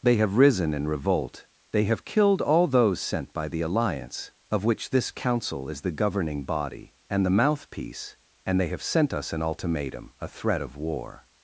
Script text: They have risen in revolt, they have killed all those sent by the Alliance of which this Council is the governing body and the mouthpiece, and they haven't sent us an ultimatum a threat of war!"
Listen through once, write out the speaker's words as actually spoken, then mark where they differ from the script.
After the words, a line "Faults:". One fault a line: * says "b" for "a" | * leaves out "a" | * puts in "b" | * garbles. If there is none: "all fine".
They have risen in revolt, they have killed all those sent by the Alliance of which this Council is the governing body and the mouthpiece, and they have sent us an ultimatum a threat of war!"
Faults:
* says "have" for "haven't"